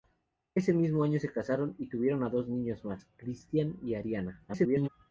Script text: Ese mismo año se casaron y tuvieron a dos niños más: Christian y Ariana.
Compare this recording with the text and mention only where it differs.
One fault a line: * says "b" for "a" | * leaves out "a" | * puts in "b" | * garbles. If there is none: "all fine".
* garbles